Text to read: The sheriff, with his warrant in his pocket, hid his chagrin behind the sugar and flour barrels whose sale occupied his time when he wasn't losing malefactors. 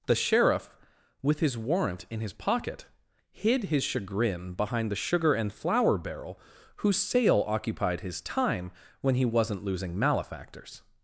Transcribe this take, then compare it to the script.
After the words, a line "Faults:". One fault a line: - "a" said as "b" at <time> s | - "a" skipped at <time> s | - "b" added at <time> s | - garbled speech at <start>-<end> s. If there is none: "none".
The sheriff, with his warrant in his pocket, hid his chagrin behind the sugar and flour barrel whose sale occupied his time when he wasn't losing malefactors.
Faults:
- "barrels" said as "barrel" at 6.0 s